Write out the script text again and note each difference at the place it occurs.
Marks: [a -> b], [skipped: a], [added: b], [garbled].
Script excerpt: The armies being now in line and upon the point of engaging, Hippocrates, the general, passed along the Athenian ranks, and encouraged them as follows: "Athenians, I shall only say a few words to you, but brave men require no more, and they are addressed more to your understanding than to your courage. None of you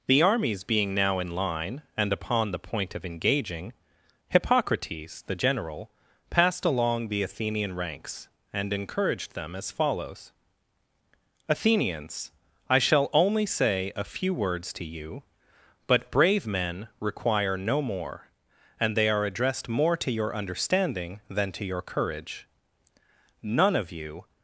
The armies being now in line and upon the point of engaging, Hippocrates, the general, passed along the Athenian ranks, and encouraged them as follows: "Athenians, I shall only say a few words to you, but brave men require no more, and they are addressed more to your understanding than to your courage. None of you